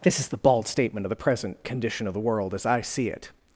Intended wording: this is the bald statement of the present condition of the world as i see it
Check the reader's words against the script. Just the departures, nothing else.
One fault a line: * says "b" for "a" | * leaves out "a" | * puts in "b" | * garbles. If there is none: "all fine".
all fine